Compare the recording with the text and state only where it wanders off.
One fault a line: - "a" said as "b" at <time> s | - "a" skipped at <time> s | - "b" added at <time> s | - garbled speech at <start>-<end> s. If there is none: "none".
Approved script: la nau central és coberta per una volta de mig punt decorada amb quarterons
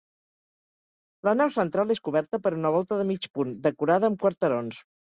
none